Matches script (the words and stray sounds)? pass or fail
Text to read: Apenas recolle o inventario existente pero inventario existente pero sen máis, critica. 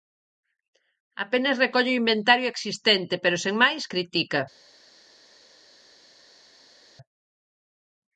fail